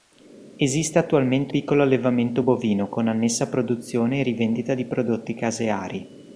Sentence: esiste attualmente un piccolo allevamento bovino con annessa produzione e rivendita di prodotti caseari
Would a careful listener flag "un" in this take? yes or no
yes